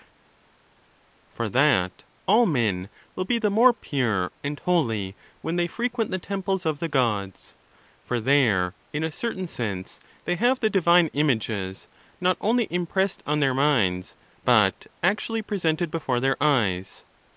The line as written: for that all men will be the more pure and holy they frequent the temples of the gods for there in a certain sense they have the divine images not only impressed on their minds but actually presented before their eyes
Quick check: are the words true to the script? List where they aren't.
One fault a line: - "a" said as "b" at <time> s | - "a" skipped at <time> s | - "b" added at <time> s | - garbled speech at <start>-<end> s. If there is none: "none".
- "when" added at 5.4 s